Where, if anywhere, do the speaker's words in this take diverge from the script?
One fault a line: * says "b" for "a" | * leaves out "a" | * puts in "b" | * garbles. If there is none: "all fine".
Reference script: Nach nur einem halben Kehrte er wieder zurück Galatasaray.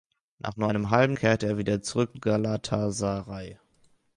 all fine